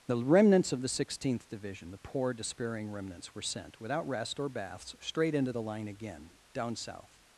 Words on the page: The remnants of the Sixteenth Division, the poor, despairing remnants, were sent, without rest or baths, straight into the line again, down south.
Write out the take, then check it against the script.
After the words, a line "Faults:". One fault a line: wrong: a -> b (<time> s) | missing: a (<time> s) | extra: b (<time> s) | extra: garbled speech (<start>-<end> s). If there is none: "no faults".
The remnants of the Sixteenth Division, the poor, despairing remnants, were sent, without rest or baths, straight into the line again, down south.
Faults:
no faults